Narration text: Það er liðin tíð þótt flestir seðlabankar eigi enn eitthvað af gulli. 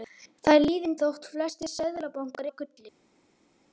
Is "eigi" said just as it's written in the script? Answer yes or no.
no